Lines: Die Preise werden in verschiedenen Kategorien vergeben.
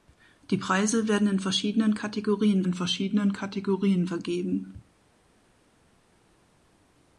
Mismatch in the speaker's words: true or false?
true